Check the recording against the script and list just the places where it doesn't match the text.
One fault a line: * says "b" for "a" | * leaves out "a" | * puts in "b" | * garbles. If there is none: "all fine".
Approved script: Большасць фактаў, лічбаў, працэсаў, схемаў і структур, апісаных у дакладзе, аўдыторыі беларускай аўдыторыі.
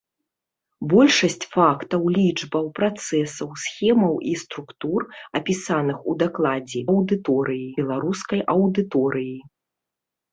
all fine